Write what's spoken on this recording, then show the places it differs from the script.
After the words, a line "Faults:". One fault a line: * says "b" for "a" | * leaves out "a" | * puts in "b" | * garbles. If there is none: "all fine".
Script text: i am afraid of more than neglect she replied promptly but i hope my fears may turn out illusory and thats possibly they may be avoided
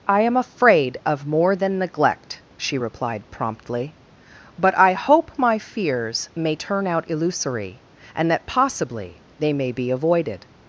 i am afraid of more than neglect she replied promptly but i hope my fears may turn out illusory and that possibly they may be avoided
Faults:
* says "that" for "thats"